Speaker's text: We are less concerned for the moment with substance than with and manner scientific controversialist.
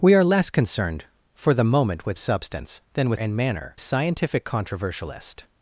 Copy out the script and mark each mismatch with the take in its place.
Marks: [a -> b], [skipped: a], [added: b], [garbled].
We are less concerned for the moment with substance than with and manner scientific controversialist.